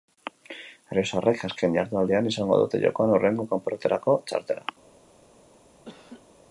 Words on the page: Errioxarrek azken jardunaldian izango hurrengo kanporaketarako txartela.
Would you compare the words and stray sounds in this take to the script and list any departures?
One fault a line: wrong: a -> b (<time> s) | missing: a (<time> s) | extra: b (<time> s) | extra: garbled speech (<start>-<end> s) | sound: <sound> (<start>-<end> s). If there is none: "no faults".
extra: dute jokoan (2.6 s)
sound: laugh (5.9-6.3 s)